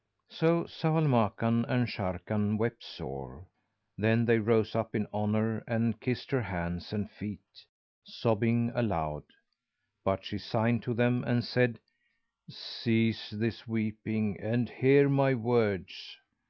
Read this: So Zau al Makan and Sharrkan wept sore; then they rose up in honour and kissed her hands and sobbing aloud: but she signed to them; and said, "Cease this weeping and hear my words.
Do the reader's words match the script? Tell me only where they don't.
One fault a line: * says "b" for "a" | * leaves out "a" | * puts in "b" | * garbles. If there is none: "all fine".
* puts in "feet"